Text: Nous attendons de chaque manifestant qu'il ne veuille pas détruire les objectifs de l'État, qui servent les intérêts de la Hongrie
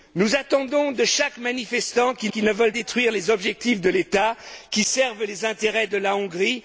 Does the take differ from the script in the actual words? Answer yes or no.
yes